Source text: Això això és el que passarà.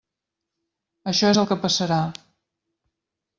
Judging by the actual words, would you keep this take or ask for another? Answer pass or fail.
fail